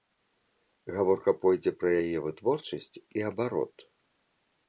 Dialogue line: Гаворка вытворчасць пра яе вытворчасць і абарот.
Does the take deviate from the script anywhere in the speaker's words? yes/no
yes